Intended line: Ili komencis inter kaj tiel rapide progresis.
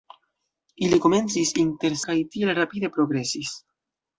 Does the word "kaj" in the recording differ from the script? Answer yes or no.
no